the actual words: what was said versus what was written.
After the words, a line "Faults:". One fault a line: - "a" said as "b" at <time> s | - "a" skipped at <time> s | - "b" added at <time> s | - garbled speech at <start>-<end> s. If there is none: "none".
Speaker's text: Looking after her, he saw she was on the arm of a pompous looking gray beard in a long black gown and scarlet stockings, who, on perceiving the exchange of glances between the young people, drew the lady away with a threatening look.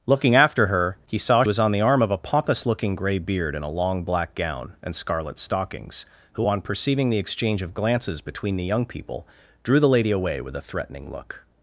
Looking after her, he saw was on the arm of a pompous looking gray beard in a long black gown and scarlet stockings, who, on perceiving the exchange of glances between the young people, drew the lady away with a threatening look.
Faults:
- "she" skipped at 1.4 s